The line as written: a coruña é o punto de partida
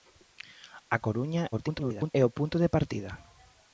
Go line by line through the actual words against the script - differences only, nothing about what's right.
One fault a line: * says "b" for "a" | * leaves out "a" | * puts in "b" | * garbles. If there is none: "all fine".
* garbles